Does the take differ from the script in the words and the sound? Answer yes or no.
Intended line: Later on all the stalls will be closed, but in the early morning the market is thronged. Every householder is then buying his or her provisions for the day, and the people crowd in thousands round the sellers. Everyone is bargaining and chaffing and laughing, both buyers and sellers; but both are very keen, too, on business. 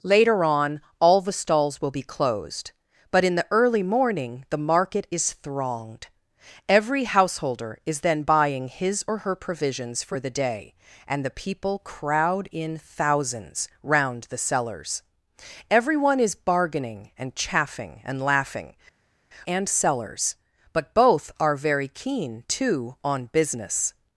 yes